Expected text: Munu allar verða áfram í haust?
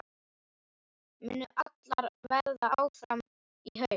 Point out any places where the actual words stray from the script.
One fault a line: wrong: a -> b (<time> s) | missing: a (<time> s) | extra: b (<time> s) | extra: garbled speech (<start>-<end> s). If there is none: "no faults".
no faults